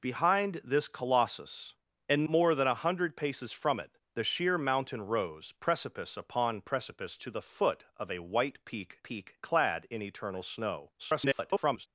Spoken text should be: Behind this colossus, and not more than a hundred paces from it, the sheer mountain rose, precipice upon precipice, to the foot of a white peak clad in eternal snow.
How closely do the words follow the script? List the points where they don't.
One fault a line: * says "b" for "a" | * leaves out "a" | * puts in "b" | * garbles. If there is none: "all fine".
* leaves out "not"
* puts in "peak"
* garbles